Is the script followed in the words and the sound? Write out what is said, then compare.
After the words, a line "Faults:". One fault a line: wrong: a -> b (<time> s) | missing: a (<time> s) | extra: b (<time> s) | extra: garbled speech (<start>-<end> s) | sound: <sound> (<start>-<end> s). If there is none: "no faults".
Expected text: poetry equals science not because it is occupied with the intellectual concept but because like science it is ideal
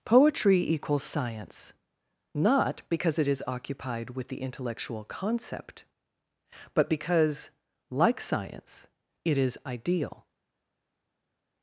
poetry equals science not because it is occupied with the intellectual concept but because like science it is ideal
Faults:
no faults